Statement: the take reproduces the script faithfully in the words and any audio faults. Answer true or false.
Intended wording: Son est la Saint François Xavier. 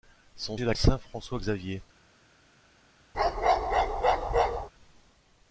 false